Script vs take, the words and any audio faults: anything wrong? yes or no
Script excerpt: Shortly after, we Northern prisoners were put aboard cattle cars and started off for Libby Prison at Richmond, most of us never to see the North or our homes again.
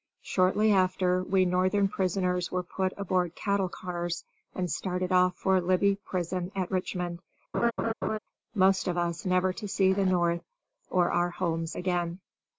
yes